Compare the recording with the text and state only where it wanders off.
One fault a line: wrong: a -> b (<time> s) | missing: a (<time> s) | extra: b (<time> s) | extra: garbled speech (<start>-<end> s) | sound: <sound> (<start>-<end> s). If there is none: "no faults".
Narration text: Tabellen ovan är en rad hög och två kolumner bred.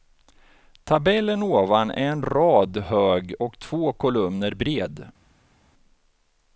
no faults